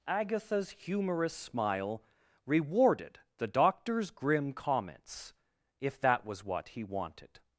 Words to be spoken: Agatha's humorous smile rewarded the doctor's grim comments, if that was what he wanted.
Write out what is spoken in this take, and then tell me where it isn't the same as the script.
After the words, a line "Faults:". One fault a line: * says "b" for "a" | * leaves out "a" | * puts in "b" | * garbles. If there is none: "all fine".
Agatha's humorous smile rewarded the doctor's grim comments, if that was what he wanted.
Faults:
all fine